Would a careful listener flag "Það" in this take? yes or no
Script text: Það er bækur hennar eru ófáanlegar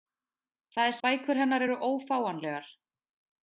no